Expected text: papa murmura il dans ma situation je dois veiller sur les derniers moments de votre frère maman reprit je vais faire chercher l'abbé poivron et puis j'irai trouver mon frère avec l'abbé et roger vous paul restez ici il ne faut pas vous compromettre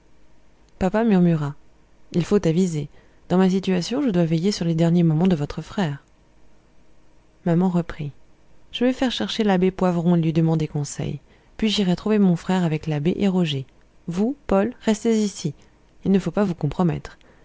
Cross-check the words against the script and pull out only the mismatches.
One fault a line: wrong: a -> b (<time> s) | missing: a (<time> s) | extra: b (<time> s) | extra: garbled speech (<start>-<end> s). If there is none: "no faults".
extra: faut aviser (2.2 s)
extra: lui demander conseil (10.2 s)